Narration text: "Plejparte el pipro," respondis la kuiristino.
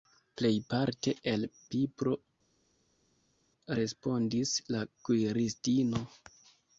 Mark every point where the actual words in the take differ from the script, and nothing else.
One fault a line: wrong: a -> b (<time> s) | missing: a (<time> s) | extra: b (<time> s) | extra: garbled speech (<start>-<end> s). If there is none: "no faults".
no faults